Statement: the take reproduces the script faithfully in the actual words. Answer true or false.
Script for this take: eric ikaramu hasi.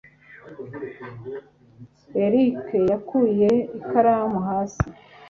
false